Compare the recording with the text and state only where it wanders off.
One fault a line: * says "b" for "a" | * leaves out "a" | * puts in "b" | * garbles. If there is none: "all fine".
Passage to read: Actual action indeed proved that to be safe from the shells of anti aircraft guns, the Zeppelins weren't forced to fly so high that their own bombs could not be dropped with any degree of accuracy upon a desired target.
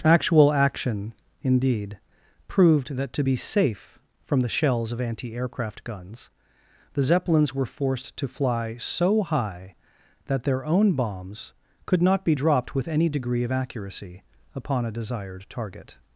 * says "were" for "weren't"